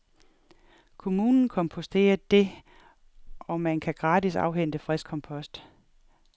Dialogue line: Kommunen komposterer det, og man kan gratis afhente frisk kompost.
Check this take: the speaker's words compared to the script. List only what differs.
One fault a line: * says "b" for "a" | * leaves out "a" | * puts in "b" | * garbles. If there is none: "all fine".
all fine